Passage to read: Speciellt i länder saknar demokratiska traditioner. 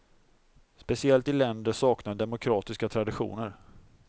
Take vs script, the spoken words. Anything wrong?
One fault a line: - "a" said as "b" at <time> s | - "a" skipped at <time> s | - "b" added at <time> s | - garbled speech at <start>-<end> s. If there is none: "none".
none